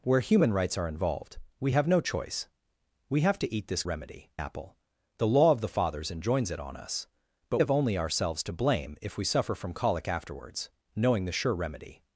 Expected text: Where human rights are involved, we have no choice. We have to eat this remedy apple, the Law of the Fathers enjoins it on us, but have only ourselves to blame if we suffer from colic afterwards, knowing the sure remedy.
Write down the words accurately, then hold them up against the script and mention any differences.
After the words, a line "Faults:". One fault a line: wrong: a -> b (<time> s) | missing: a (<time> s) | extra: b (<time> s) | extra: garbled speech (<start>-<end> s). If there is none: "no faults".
Where human rights are involved, we have no choice. We have to eat this remedy apple, the Law of the Fathers enjoins it on us, but have only ourselves to blame if we suffer from colic afterwards, knowing the sure remedy.
Faults:
no faults